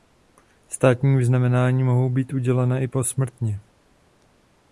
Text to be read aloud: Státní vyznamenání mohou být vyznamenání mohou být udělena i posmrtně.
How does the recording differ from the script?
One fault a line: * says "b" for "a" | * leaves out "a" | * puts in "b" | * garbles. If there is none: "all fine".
* leaves out "vyznamenání mohou být"